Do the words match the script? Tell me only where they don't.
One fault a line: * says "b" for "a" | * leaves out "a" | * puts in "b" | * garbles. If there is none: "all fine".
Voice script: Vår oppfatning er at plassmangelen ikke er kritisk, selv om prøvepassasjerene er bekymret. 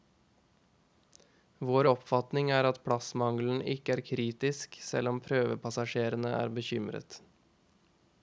all fine